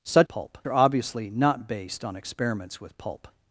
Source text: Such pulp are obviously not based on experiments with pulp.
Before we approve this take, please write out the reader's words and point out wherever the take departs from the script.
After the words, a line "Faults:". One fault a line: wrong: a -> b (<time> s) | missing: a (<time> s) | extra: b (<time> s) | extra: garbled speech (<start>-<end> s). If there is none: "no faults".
Such pulp are obviously not based on experiments with pulp.
Faults:
no faults